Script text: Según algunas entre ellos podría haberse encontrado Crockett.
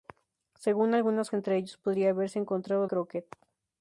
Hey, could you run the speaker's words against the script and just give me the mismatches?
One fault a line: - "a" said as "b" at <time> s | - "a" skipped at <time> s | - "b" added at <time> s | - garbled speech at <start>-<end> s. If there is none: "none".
none